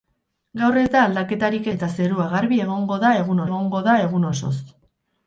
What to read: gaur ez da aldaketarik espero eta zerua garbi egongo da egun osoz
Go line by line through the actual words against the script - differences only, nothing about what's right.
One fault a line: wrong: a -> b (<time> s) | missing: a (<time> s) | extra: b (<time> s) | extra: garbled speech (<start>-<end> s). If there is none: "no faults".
missing: espero (1.7 s)
extra: egongo da egun (3.5 s)